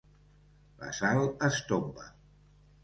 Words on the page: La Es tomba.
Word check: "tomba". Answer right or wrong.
right